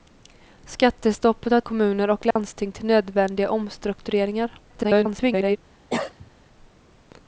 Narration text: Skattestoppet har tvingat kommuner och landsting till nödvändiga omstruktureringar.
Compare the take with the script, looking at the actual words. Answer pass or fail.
fail